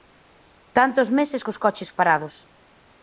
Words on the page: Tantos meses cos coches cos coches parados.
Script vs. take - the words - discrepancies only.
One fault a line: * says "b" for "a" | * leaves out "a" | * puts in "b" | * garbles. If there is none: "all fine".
* leaves out "cos coches"